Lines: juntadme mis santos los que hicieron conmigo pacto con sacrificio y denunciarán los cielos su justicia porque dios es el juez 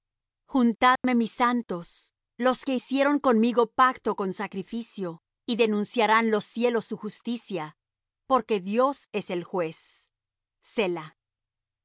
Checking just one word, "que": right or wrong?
right